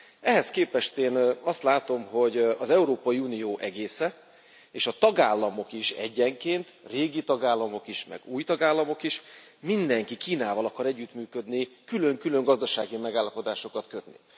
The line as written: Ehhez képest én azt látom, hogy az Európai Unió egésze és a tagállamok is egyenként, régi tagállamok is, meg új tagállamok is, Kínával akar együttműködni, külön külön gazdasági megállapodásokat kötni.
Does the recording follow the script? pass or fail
fail